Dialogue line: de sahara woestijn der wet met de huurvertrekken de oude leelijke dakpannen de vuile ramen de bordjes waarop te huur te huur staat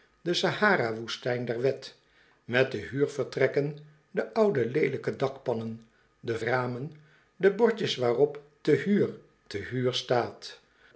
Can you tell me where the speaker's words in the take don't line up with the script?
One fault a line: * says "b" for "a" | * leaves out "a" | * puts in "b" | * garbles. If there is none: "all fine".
* leaves out "vuile"